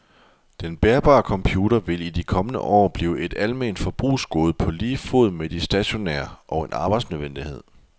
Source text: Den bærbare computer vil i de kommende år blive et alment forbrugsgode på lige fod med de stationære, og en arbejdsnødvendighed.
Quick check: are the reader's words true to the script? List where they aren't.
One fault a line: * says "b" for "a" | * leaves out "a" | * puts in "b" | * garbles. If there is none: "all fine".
all fine